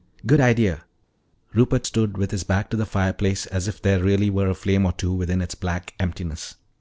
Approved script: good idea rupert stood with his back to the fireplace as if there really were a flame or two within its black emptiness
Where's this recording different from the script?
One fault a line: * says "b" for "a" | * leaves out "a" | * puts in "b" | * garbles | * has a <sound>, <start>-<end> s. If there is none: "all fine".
all fine